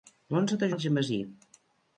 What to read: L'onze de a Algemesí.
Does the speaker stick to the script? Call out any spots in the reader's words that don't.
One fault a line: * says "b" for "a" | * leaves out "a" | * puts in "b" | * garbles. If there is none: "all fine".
all fine